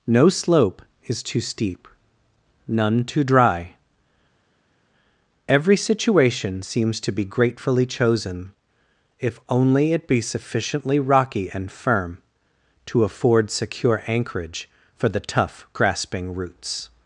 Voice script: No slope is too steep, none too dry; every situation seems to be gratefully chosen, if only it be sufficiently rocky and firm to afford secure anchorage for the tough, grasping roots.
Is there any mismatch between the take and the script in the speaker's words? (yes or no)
no